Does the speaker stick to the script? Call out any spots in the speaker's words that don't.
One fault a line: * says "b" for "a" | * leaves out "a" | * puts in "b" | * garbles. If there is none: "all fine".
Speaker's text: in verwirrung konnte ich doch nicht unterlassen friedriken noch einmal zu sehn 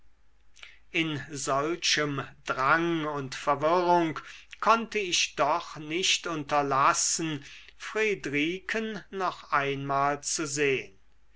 * puts in "solchem drang und"